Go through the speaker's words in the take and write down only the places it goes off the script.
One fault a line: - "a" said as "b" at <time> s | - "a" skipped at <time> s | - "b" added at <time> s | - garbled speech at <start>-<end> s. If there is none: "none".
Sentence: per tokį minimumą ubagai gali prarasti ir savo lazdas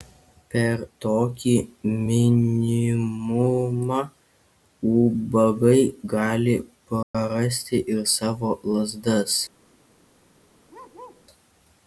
none